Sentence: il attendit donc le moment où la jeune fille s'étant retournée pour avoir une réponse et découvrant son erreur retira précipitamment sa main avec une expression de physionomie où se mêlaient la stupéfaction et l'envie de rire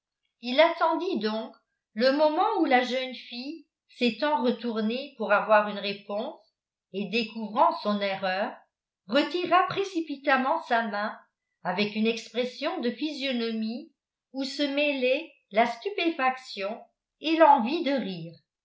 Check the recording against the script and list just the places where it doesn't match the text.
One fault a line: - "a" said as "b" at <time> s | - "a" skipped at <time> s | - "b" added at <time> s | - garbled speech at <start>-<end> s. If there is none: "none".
none